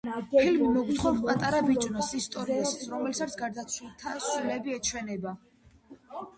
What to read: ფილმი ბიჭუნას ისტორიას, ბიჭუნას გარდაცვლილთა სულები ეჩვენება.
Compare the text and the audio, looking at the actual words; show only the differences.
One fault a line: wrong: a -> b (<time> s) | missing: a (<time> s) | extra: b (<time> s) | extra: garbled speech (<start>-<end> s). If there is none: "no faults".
extra: მოგვითხრობს პატარა (0.8 s)
wrong: ბიჭუნას -> რომელსაც (2.9 s)